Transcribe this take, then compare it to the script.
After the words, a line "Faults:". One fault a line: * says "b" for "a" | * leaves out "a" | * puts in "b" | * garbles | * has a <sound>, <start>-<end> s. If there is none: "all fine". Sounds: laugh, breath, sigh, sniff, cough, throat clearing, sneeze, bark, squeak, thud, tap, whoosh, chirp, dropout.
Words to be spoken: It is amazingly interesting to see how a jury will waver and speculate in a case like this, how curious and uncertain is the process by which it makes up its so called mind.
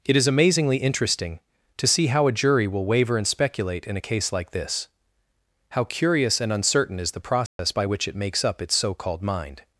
It is amazingly interesting to see how a jury will waver and speculate in a case like this, how curious and uncertain is the process by which it makes up its so called mind.
Faults:
* has a dropout, 7.5-7.6 s